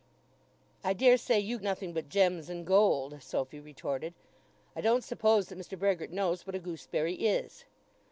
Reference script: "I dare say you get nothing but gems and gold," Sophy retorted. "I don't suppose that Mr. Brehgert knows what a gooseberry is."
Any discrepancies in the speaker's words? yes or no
yes